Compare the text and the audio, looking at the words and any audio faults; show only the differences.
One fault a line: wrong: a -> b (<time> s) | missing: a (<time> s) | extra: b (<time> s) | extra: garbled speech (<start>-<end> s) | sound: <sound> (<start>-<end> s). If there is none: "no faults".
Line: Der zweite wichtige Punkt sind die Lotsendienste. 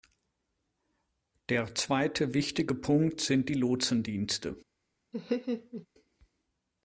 sound: laugh (5.1-5.9 s)